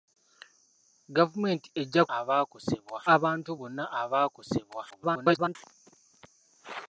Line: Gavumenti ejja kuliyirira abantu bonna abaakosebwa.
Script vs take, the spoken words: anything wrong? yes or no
yes